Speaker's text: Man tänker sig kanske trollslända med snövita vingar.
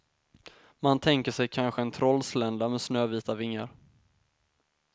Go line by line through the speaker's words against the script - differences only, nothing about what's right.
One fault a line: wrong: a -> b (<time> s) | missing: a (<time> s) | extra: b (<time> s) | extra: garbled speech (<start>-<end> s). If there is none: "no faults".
extra: en (1.8 s)